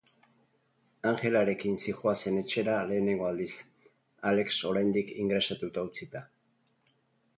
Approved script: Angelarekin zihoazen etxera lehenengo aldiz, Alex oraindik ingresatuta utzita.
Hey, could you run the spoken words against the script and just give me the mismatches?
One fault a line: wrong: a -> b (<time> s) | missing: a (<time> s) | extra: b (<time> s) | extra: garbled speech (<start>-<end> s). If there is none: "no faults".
no faults